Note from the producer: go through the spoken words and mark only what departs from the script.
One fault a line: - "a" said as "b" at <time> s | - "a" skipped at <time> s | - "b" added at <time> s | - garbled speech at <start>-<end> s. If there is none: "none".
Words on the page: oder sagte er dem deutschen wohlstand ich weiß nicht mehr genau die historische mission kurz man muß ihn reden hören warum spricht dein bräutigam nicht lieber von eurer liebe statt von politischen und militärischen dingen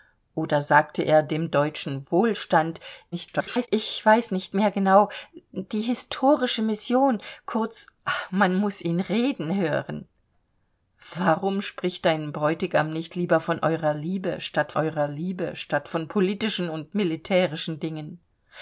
- garbled speech at 3.1-3.7 s
- "eurer liebe statt" added at 14.7 s